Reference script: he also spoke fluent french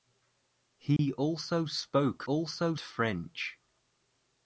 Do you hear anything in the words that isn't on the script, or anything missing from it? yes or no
yes